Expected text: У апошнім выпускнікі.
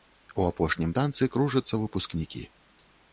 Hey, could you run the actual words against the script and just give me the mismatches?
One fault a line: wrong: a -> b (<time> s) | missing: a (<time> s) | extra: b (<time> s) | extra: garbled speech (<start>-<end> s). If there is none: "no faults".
extra: танцы кружацца (1.0 s)